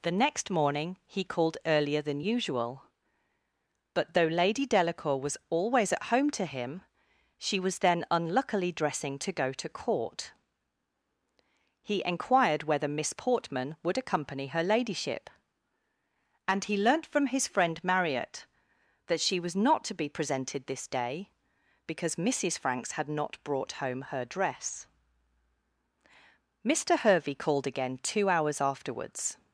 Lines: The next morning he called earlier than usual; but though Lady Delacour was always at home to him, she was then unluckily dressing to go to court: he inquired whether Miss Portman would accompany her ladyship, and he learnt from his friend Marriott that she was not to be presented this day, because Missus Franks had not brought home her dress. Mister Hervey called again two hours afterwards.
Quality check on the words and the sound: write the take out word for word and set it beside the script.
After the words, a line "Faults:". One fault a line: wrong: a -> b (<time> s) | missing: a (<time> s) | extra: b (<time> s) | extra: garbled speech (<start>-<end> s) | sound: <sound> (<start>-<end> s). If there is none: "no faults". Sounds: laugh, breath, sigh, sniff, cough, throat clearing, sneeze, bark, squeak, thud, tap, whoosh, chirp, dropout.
The next morning he called earlier than usual; but though Lady Delacour was always at home to him, she was then unluckily dressing to go to court: he inquired whether Miss Portman would accompany her ladyship, and he learnt from his friend Marriott that she was not to be presented this day, because Missus Franks had not brought home her dress. Mister Hervey called again two hours afterwards.
Faults:
no faults